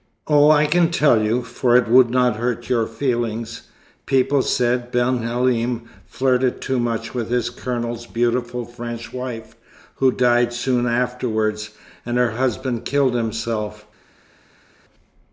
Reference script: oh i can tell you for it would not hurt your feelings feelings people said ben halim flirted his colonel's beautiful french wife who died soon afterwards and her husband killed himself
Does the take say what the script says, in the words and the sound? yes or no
no